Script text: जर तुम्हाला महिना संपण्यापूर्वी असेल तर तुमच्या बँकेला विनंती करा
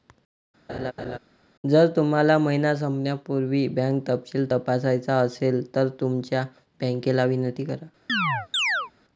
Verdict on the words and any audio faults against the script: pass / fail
fail